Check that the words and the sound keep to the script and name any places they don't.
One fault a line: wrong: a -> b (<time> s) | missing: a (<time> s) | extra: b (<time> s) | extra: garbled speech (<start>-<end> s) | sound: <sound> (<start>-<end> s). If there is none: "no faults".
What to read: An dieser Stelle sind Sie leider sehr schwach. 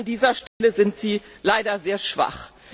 sound: dropout (0.5-0.6 s)